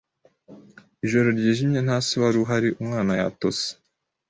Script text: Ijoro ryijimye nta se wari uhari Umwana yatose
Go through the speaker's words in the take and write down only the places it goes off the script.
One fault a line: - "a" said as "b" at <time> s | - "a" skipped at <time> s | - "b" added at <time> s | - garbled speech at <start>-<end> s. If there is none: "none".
none